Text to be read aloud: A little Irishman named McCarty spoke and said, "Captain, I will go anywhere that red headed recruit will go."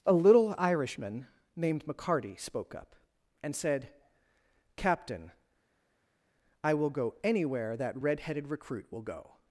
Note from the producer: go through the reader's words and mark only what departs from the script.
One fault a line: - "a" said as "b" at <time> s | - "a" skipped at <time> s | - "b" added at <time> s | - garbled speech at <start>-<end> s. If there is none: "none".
- "up" added at 2.7 s